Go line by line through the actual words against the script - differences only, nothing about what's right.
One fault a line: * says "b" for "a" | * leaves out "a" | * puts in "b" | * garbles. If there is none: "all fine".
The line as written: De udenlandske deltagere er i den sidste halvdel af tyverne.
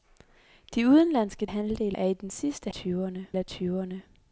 * says "halvdel" for "deltagere"
* says "tyverne" for "halvdel"